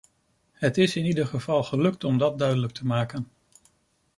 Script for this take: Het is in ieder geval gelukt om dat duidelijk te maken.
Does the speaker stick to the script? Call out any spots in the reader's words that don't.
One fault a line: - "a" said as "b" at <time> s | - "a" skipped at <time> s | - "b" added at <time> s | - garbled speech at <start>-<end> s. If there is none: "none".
none